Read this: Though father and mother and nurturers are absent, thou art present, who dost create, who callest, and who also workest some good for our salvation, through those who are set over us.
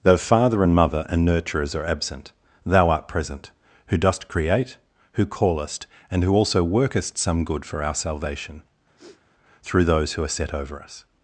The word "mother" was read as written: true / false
true